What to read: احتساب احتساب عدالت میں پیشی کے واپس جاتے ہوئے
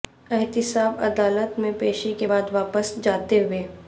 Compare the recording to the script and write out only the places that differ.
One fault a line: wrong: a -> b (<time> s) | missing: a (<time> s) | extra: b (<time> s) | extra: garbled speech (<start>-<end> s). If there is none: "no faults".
missing: احتساب (1.0 s)
extra: بعد (2.2 s)